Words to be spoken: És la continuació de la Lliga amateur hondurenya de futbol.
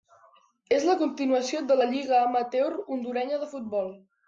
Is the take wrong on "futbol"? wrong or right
right